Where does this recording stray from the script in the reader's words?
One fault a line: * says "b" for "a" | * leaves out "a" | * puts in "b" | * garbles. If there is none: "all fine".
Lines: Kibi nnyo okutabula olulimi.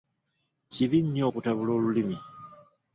all fine